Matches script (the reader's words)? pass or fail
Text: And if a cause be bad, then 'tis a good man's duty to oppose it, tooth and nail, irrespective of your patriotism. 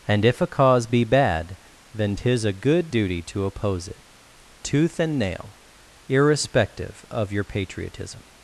fail